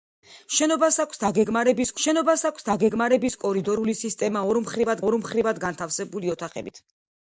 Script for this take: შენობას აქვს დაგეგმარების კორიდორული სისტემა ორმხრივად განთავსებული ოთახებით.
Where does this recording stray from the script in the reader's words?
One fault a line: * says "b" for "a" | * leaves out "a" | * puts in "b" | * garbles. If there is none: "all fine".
* puts in "შენობას აქვს დაგეგმარების"
* puts in "ორმხრივად"